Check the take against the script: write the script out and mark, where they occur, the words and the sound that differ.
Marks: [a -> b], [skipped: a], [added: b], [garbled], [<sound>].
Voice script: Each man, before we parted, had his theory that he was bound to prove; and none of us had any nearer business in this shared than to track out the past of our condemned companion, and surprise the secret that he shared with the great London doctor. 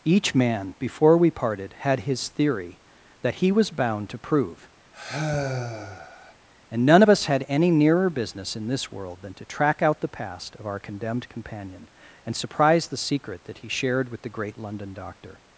Each man, before we parted, had his theory that he was bound to prove; [sigh] and none of us had any nearer business in this [shared -> world] than to track out the past of our condemned companion, and surprise the secret that he shared with the great London doctor.